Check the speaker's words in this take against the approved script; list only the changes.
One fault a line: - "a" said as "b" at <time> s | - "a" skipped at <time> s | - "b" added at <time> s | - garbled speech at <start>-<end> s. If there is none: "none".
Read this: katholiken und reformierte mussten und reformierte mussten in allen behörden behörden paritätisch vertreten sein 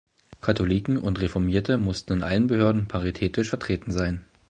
- "und reformierte mussten" skipped at 2.1 s
- "behörden" skipped at 2.9 s